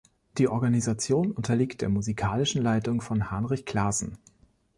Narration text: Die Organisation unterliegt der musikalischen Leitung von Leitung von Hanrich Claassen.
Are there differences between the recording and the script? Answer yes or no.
yes